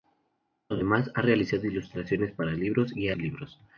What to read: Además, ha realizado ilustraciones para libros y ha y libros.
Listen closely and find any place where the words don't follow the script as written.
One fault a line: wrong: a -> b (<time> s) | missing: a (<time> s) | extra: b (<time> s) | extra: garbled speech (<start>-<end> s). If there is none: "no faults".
no faults